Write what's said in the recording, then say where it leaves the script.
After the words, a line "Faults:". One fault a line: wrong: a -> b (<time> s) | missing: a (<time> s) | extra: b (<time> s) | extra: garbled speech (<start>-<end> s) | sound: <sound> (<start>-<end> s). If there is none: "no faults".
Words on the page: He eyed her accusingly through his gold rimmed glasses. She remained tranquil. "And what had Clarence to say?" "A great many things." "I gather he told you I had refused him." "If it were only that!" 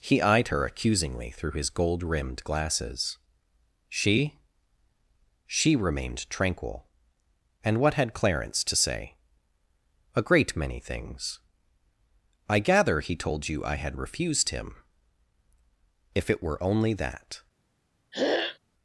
He eyed her accusingly through his gold rimmed glasses. She She remained tranquil. "And what had Clarence to say?" "A great many things." "I gather he told you I had refused him." "If it were only that!"
Faults:
extra: She (5.5 s)
sound: throat clearing (18.1-18.6 s)